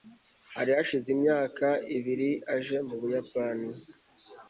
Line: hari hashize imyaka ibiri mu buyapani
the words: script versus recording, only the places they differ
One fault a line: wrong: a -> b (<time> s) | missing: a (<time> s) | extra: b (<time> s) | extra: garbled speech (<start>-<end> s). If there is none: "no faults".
extra: aje (2.5 s)